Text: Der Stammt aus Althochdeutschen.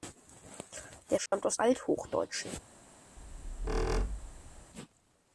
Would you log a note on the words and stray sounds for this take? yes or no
yes